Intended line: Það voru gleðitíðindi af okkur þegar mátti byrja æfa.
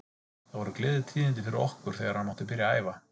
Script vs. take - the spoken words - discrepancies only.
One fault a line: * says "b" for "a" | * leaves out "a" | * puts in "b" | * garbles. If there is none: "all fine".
* says "fyrir" for "af"
* puts in "hann"
* puts in "að"